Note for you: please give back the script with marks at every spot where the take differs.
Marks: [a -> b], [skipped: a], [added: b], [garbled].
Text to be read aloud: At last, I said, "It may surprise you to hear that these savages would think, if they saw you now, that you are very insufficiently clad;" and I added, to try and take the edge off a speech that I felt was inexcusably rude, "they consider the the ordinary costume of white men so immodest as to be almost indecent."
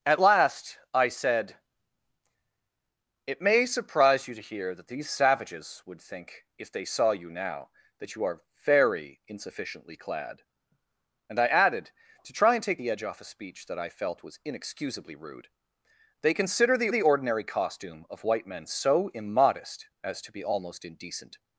At last, I said, "It may surprise you to hear that these savages would think, if they saw you now, that you are very insufficiently clad;" and I added, to try and take the edge off a speech that I felt was inexcusably rude, "they consider the the ordinary costume of white men so immodest as to be almost indecent."